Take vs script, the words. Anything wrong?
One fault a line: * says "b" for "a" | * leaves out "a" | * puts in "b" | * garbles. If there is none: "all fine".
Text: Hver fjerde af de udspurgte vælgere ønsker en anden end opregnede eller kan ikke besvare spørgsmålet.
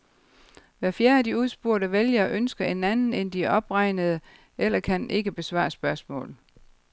* puts in "de"